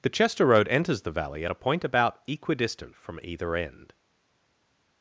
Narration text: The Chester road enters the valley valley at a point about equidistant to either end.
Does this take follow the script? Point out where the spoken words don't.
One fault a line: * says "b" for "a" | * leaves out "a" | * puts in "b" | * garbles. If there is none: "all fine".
* leaves out "valley"
* says "from" for "to"